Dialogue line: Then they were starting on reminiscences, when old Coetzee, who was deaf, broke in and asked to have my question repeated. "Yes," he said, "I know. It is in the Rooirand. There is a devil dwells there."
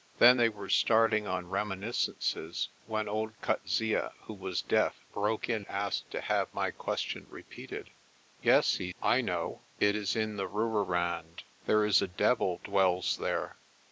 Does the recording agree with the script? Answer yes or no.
no